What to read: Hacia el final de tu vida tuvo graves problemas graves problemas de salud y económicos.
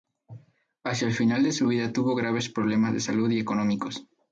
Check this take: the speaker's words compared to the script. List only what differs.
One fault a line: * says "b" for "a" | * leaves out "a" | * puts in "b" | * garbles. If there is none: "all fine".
* says "su" for "tu"
* leaves out "graves problemas"